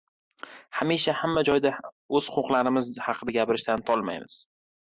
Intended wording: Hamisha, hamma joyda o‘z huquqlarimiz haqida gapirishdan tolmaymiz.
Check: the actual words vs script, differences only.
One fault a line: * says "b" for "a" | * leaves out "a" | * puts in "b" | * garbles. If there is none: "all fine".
all fine